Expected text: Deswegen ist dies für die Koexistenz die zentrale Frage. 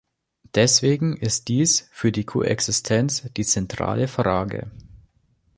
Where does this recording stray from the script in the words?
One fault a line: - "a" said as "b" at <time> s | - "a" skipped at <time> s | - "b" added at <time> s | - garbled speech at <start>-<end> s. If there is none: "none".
none